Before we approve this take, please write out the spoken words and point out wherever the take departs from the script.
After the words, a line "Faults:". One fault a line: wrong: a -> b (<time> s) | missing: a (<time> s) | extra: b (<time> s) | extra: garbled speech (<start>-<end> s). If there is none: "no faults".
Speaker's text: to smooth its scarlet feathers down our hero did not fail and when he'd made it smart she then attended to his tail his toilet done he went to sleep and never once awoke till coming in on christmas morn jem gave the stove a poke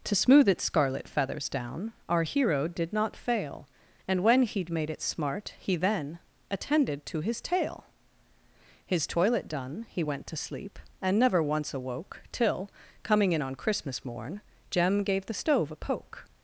to smooth its scarlet feathers down our hero did not fail and when he'd made it smart he then attended to his tail his toilet done he went to sleep and never once awoke till coming in on christmas morn jem gave the stove a poke
Faults:
wrong: she -> he (5.6 s)